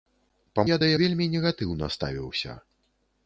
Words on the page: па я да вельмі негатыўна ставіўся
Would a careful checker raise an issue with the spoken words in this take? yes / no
no